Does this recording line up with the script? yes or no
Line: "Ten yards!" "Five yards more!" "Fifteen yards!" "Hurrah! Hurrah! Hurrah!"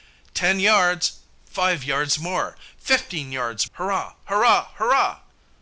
yes